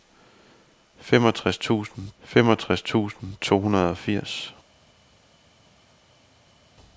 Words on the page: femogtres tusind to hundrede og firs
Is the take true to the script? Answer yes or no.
no